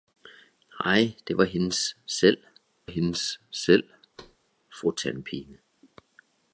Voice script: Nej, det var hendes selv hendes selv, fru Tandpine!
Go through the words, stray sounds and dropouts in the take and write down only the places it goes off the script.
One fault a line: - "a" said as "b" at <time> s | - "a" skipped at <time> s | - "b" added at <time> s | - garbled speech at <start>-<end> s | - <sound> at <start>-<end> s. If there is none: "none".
- thud at 4.2-4.4 s